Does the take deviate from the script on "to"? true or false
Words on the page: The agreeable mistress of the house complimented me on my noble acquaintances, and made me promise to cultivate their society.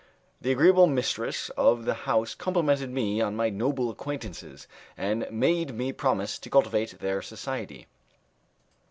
false